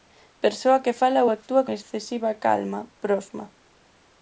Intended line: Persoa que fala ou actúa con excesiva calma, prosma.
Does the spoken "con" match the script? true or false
false